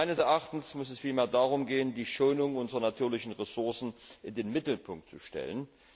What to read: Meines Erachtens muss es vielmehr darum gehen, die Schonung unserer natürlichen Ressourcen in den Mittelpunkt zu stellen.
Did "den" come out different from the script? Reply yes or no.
no